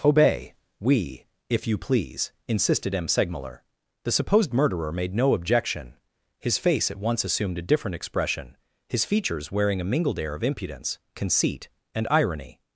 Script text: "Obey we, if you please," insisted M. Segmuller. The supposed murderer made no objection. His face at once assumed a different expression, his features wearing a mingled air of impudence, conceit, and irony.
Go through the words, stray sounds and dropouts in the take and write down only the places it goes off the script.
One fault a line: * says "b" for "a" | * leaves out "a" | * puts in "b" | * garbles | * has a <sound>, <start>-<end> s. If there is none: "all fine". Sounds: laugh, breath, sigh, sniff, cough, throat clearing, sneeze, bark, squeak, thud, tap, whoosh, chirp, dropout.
all fine